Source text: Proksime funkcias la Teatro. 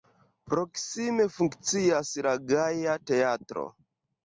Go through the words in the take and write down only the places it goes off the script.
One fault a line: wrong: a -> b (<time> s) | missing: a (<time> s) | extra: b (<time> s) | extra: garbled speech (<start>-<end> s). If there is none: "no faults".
extra: Gaja (2.5 s)